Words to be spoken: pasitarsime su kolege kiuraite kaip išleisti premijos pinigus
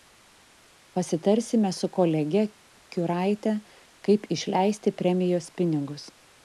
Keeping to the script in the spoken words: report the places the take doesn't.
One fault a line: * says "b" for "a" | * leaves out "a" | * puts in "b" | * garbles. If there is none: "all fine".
all fine